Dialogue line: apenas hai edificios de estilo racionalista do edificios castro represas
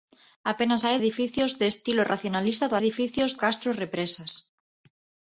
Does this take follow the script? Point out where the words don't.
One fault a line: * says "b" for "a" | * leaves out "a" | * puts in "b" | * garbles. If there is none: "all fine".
all fine